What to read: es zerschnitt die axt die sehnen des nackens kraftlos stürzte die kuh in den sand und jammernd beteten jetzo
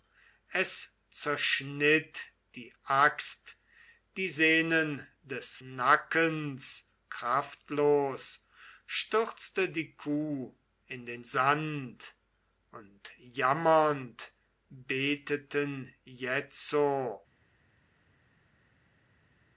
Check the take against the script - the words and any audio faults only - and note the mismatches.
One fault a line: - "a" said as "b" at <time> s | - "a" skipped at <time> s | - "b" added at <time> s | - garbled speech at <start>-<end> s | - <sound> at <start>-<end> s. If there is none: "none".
none